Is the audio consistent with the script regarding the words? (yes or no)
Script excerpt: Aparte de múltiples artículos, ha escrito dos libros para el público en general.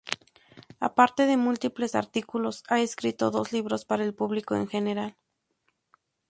yes